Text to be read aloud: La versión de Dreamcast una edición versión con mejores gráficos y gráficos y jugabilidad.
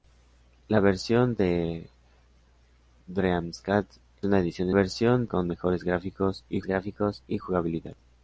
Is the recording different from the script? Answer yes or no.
no